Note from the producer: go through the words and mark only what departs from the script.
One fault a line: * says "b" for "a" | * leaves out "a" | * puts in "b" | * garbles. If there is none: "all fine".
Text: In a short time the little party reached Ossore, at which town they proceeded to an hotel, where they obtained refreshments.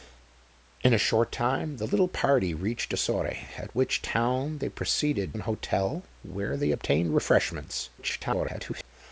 * leaves out "to"
* garbles